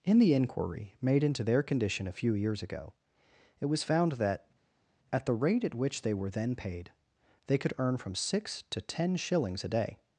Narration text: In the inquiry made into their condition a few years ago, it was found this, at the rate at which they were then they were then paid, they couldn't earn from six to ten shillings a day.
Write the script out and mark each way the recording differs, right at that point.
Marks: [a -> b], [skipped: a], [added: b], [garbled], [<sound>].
In the inquiry made into their condition a few years ago, it was found [this, -> that] at the rate at which they were then [skipped: they were then] paid, they [couldn't -> could] earn from six to ten shillings a day.